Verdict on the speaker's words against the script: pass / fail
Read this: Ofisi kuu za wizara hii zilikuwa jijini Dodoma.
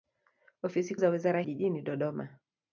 fail